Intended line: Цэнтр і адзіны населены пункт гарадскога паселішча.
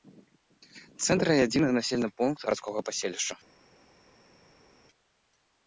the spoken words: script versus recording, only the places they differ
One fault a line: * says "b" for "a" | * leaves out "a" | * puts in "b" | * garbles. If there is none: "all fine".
all fine